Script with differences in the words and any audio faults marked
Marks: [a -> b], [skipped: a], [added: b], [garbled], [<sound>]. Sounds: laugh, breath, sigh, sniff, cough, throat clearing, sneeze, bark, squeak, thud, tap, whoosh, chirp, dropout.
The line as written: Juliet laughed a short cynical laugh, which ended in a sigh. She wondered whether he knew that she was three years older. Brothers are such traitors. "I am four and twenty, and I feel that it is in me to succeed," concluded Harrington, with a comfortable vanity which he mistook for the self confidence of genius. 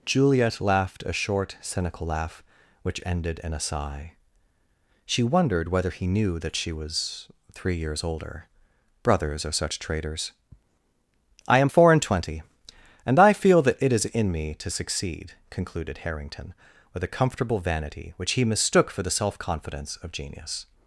Juliet laughed a short cynical laugh, which ended in a sigh. She wondered whether he knew that she was three years older. Brothers are such traitors. "I am four and twenty, and I feel that it is in me to succeed," concluded Harrington, with a comfortable vanity which he mistook for the self confidence of genius.